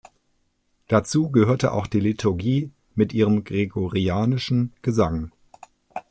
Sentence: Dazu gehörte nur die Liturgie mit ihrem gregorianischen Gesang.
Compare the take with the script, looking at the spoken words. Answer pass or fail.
fail